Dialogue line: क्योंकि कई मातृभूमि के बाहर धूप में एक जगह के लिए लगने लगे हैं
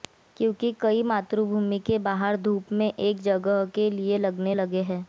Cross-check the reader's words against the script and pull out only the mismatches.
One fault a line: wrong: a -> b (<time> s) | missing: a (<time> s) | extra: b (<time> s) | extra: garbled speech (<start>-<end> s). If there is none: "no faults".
no faults